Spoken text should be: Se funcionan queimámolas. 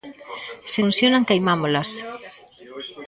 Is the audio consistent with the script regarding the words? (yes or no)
yes